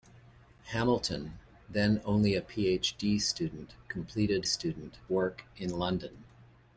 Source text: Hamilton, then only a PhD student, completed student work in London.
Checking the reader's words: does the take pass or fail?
pass